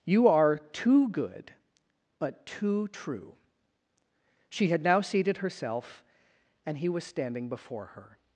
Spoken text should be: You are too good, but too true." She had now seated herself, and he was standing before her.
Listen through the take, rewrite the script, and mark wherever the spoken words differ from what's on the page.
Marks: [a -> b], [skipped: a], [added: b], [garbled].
You are too good, but too true." She had now seated herself, and he was standing before her.